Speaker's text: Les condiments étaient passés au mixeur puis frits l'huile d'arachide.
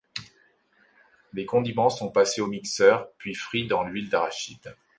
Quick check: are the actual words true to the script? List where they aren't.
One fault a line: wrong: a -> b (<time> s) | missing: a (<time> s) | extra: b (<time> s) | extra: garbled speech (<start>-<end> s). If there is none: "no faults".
wrong: étaient -> sont (1.9 s)
extra: dans (3.7 s)